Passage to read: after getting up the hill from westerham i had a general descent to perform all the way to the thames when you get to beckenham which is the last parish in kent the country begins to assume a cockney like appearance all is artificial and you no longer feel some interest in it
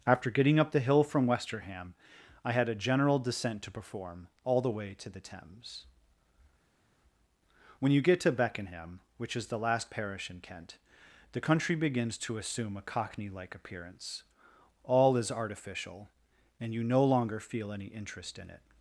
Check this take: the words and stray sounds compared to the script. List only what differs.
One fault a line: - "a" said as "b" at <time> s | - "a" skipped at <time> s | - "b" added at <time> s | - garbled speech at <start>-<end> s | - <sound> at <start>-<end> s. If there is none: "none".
- "some" said as "any" at 17.7 s